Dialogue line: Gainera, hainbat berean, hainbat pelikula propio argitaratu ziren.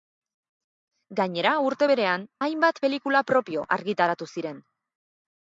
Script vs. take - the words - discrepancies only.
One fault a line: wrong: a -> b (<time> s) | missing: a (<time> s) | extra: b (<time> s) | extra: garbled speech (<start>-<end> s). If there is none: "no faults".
wrong: hainbat -> urte (1.6 s)